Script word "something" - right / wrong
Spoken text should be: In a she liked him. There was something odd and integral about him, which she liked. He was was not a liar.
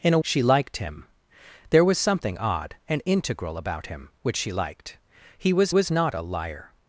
right